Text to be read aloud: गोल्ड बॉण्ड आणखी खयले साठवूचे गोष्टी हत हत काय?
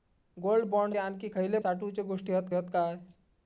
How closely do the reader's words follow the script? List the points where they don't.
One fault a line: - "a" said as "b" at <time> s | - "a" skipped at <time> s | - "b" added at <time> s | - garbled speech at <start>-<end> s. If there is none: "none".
none